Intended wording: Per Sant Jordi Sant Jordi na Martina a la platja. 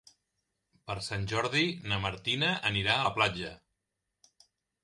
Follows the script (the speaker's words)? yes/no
no